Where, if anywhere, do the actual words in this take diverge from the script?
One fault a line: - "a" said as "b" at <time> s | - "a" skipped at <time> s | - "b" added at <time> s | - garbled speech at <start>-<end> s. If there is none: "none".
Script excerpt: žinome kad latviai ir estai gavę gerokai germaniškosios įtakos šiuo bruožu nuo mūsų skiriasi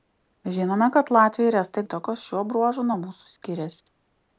- "gavę gerokai germaniškosios" skipped at 1.8 s